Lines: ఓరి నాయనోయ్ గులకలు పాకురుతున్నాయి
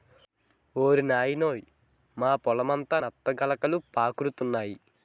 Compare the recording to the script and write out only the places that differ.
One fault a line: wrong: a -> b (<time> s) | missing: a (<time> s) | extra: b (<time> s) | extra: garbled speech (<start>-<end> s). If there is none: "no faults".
extra: మా పొలమంతా నత్త (2.2 s)